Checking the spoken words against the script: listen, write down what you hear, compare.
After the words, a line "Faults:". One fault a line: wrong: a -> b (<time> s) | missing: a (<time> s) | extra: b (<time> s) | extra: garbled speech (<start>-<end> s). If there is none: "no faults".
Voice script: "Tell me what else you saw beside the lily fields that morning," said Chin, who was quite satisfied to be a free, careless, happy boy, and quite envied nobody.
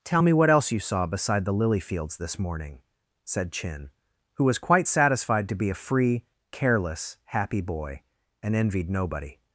"Tell me what else you saw beside the lily fields this morning," said Chin, who was quite satisfied to be a free, careless, happy boy, and envied nobody.
Faults:
wrong: that -> this (2.2 s)
missing: quite (8.5 s)